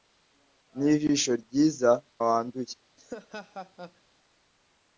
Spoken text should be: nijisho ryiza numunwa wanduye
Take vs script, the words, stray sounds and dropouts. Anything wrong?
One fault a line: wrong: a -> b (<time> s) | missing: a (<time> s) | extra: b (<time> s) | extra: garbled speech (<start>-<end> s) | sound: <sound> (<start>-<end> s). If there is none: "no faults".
missing: numunwa (1.9 s)
sound: laugh (3.0-4.0 s)